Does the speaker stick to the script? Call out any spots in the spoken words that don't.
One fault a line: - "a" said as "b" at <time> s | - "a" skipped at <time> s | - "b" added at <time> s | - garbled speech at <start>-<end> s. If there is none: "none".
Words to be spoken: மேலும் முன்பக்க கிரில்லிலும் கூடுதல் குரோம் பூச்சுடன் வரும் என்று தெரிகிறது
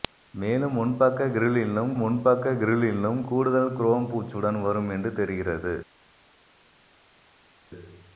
- "முன்பக்க கிரில்லிலும்" added at 2.0 s